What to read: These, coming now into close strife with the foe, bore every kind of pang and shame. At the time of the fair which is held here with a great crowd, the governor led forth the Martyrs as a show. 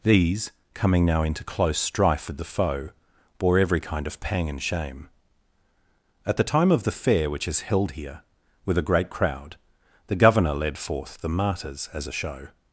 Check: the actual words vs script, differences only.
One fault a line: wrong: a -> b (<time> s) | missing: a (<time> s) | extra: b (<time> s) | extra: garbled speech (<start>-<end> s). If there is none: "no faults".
no faults